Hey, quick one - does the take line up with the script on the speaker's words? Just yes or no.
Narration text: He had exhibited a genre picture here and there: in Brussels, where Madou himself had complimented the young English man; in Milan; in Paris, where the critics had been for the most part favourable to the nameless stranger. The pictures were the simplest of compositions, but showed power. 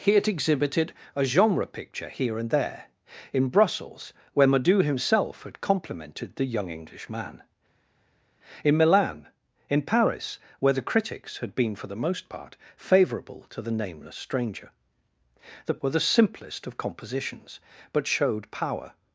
no